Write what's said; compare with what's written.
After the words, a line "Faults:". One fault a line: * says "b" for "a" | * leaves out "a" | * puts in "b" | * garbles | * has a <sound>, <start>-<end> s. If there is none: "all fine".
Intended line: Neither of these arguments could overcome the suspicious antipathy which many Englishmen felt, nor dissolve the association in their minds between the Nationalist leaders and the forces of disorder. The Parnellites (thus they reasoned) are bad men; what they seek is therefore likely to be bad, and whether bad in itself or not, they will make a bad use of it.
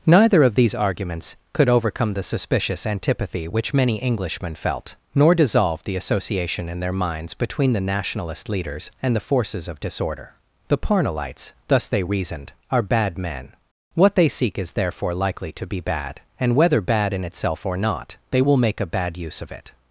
Neither of these arguments could overcome the suspicious antipathy which many Englishmen felt, nor dissolve the association in their minds between the Nationalist leaders and the forces of disorder. The Parnellites (thus they reasoned) are bad men; what they seek is therefore likely to be bad, and whether bad in itself or not, they will make a bad use of it.
Faults:
all fine